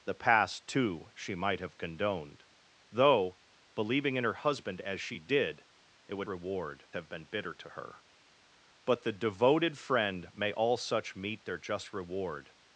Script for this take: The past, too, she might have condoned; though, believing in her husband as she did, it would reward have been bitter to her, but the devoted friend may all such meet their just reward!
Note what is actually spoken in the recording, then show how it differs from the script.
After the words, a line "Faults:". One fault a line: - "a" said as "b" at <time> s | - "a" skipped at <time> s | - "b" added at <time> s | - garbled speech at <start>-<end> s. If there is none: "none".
The past, too, she might have condoned; though, believing in her husband as she did, it would reward have been bitter to her, but the devoted friend may all such meet their just reward!
Faults:
none